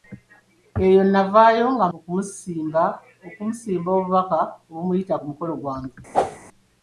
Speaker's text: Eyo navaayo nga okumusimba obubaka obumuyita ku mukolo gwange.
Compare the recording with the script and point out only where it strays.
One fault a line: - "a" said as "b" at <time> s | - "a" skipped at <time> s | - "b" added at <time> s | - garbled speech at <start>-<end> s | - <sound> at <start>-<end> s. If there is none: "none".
- whoosh at 6.1-6.4 s